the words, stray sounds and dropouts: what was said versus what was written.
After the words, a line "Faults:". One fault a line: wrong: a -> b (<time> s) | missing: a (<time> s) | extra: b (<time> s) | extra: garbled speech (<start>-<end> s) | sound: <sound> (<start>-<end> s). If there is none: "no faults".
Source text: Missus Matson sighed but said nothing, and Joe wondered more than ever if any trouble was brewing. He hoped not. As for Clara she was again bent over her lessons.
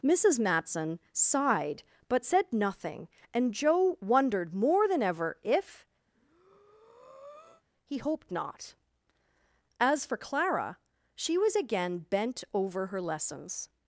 Missus Matson sighed but said nothing, and Joe wondered more than ever if. He hoped not. As for Clara she was again bent over her lessons.
Faults:
missing: any trouble was brewing (5.8 s)
sound: breath (6.1-7.6 s)